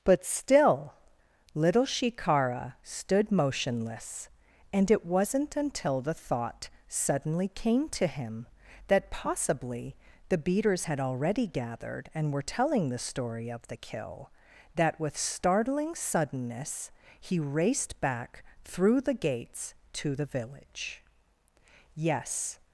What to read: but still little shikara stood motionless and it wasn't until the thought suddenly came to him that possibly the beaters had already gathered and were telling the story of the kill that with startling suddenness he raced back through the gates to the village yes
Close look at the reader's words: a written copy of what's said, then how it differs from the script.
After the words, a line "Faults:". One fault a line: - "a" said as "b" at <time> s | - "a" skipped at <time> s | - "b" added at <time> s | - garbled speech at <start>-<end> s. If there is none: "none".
but still little shikara stood motionless and it wasn't until the thought suddenly came to him that possibly the beaters had already gathered and were telling the story of the kill that with startling suddenness he raced back through the gates to the village yes
Faults:
none